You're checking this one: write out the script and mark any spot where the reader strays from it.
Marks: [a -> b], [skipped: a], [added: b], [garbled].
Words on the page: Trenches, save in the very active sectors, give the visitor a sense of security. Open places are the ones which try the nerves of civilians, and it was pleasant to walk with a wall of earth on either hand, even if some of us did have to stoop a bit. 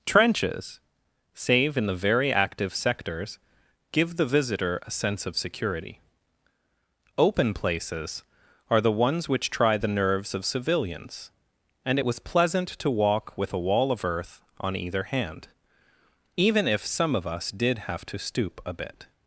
Trenches, save in the very active sectors, give the visitor a sense of security. Open places are the ones which try the nerves of civilians, and it was pleasant to walk with a wall of earth on either hand, even if some of us did have to stoop a bit.